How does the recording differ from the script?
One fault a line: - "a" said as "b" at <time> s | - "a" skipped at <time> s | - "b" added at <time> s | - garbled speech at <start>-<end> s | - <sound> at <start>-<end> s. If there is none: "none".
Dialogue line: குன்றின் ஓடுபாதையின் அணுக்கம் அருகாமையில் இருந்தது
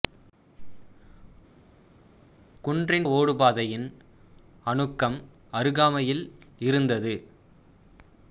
none